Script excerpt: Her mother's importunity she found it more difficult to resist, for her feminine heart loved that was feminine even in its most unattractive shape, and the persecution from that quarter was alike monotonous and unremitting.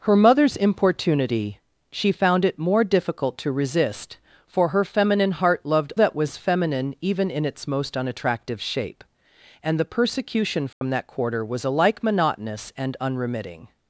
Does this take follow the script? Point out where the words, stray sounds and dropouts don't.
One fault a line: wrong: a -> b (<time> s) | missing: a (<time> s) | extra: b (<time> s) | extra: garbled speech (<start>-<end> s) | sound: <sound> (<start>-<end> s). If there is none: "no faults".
sound: dropout (10.7-10.8 s)